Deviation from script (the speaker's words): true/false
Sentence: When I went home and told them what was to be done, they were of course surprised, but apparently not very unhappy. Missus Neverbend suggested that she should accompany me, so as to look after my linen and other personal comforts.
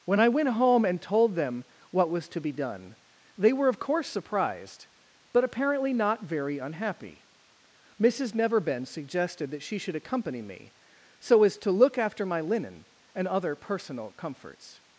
false